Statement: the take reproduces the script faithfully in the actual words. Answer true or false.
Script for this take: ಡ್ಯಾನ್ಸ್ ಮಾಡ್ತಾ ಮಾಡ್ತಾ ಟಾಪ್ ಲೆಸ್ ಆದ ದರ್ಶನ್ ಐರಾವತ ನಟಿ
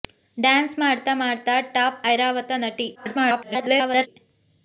false